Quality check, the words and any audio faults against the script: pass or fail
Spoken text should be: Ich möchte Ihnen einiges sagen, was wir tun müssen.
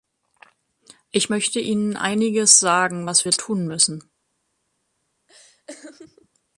fail